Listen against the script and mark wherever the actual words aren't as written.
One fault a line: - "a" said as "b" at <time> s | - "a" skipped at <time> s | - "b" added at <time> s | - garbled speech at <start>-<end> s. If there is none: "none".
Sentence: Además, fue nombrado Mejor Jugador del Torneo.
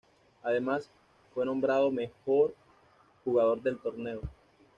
none